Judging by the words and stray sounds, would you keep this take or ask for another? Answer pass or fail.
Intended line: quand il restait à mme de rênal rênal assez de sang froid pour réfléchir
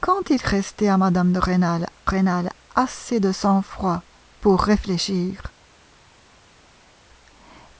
pass